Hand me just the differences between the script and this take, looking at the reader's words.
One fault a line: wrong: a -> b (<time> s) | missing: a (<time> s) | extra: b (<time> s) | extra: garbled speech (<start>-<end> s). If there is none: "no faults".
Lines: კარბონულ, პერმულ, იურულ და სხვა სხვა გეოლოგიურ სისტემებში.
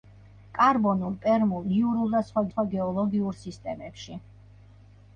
no faults